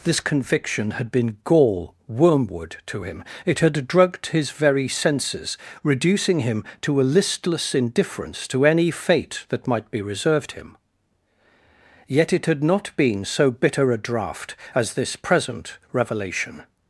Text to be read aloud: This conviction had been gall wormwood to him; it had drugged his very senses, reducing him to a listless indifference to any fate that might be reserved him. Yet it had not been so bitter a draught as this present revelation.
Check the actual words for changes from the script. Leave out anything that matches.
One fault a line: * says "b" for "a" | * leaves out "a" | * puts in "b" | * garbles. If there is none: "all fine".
all fine